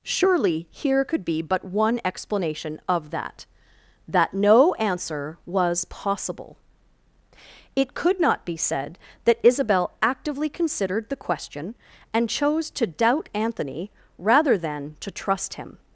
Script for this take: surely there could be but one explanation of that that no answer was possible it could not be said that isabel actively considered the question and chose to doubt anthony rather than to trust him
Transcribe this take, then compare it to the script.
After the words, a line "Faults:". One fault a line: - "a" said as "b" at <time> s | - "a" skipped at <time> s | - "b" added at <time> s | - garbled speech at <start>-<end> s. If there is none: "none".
surely here could be but one explanation of that that no answer was possible it could not be said that isabel actively considered the question and chose to doubt anthony rather than to trust him
Faults:
- "there" said as "here" at 0.7 s